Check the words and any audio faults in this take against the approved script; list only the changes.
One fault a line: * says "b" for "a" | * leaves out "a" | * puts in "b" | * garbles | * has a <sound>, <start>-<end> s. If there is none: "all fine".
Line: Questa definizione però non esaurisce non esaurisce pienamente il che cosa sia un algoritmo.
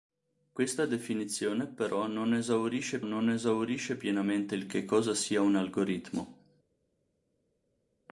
all fine